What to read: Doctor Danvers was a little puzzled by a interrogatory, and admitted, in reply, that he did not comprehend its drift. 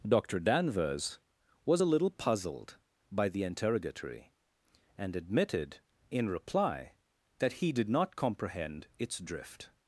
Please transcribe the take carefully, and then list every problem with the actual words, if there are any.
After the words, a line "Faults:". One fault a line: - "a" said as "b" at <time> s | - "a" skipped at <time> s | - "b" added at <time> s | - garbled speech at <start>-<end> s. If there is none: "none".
Doctor Danvers was a little puzzled by the interrogatory, and admitted, in reply, that he did not comprehend its drift.
Faults:
- "a" said as "the" at 3.3 s